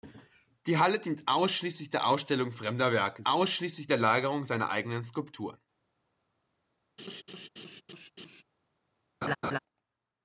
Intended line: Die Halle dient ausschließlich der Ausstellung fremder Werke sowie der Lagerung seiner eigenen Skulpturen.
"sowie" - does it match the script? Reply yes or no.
no